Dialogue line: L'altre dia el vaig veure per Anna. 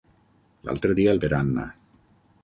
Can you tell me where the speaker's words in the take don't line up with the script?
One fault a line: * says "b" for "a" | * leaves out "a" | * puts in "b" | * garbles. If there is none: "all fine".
* leaves out "vaig veure"